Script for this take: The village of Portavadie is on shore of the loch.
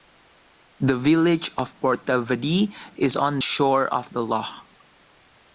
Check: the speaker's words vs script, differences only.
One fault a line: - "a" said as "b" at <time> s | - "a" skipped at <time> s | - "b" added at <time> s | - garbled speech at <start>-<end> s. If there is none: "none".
none